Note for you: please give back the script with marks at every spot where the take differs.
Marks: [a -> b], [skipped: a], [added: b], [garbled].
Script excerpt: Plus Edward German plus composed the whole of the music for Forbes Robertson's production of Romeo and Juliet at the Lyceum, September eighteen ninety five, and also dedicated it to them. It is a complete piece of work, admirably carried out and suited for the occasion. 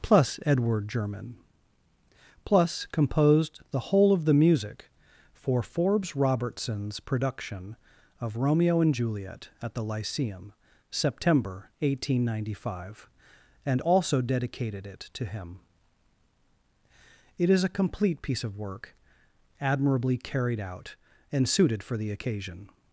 Plus Edward German plus composed the whole of the music for Forbes Robertson's production of Romeo and Juliet at the Lyceum, September eighteen ninety five, and also dedicated it to [them. -> him] It is a complete piece of work, admirably carried out and suited for the occasion.